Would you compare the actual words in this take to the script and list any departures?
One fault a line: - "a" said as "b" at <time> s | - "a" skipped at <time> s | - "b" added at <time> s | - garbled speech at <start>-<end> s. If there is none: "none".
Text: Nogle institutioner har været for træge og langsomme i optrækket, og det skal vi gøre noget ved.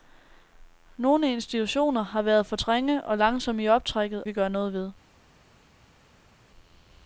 - "og det skal" skipped at 4.2 s